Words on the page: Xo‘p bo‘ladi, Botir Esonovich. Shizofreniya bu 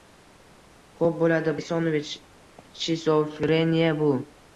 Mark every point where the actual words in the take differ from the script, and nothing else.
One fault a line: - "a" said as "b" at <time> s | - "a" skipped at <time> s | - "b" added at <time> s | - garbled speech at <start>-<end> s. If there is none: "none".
- "Botir" skipped at 1.5 s